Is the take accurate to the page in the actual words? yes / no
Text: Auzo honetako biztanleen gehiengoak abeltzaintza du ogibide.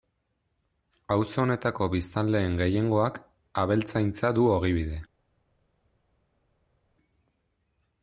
yes